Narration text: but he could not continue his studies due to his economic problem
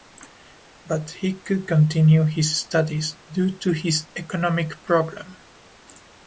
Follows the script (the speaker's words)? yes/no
no